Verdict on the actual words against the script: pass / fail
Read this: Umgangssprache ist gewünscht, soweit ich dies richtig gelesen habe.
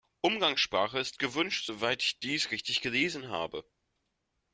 pass